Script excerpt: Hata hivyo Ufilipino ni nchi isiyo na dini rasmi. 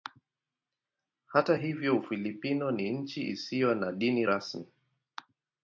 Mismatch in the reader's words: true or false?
false